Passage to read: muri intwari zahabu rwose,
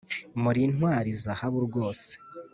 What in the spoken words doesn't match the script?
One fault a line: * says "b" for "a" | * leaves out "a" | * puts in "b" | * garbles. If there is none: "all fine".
all fine